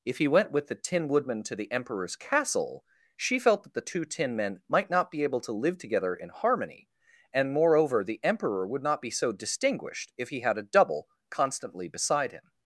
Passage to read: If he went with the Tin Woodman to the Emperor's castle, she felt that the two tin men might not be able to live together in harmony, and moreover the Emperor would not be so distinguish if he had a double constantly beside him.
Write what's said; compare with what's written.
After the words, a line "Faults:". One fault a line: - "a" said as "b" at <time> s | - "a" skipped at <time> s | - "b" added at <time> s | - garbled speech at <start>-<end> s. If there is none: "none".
If he went with the Tin Woodman to the Emperor's castle, she felt that the two tin men might not be able to live together in harmony, and moreover the Emperor would not be so distinguished if he had a double constantly beside him.
Faults:
- "distinguish" said as "distinguished" at 9.3 s